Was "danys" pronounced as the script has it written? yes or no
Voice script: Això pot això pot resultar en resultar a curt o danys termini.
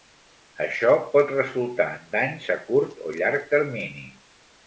no